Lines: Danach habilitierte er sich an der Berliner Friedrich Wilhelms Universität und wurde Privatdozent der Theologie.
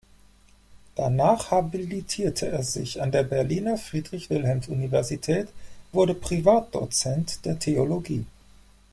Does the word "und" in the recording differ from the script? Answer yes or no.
yes